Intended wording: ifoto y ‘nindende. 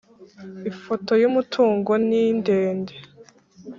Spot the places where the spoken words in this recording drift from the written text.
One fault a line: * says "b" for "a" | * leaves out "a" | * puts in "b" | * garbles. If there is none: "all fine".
* puts in "umutungo"